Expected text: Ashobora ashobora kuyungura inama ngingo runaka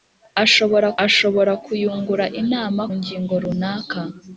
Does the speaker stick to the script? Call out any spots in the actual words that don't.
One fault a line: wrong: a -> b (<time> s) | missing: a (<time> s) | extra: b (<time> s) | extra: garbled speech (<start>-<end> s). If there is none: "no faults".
no faults